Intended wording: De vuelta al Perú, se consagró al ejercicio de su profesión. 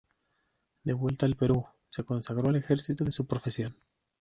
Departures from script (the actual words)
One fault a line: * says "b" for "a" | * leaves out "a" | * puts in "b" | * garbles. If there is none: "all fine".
all fine